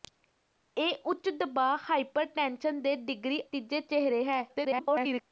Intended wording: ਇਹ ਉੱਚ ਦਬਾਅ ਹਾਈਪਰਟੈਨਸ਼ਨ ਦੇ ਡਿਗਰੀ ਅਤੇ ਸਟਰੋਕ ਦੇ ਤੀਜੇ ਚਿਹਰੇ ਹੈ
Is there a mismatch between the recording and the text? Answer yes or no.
yes